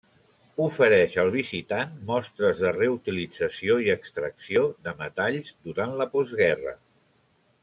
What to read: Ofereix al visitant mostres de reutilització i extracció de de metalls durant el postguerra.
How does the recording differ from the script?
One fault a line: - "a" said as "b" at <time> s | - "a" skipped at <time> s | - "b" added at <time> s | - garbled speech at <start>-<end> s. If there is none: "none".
- "de" skipped at 5.0 s
- "el" said as "la" at 6.0 s